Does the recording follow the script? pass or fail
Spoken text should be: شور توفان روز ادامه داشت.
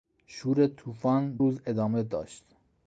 pass